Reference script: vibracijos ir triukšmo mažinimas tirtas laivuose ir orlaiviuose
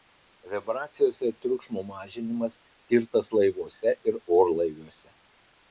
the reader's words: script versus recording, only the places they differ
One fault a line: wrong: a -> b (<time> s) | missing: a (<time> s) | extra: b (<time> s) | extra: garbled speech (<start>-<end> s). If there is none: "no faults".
no faults